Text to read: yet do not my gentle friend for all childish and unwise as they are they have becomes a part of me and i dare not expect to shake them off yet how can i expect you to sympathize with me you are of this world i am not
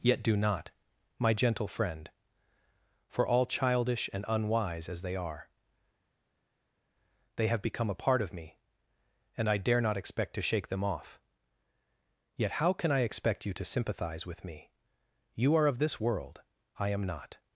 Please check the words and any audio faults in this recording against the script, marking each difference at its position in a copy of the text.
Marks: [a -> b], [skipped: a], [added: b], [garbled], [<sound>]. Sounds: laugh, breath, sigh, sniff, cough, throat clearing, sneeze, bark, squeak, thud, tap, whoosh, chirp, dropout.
yet do not my gentle friend for all childish and unwise as they are they have [becomes -> become] a part of me and i dare not expect to shake them off yet how can i expect you to sympathize with me you are of this world i am not